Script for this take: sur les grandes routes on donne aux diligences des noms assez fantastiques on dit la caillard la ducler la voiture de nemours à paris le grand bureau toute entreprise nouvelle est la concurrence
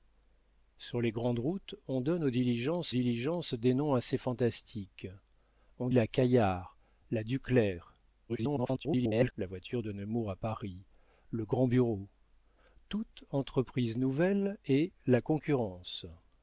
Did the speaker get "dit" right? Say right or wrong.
wrong